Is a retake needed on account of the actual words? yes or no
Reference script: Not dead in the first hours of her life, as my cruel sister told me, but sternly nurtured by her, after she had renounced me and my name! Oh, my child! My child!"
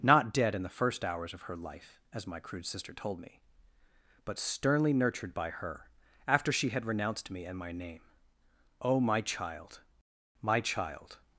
yes